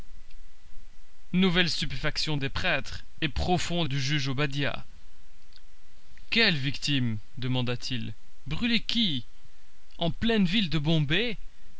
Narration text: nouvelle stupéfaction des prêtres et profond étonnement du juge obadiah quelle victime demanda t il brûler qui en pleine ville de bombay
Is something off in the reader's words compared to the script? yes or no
yes